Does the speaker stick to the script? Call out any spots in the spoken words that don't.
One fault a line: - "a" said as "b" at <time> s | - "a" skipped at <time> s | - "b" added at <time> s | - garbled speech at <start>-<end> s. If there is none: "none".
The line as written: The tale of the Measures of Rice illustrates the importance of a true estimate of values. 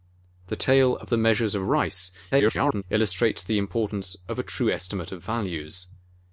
- garbled speech at 2.3-2.8 s